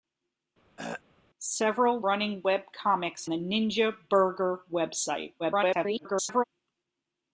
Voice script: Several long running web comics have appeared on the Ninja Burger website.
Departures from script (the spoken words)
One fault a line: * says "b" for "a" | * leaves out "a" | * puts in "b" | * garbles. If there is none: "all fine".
* leaves out "long"
* leaves out "have appeared on"
* garbles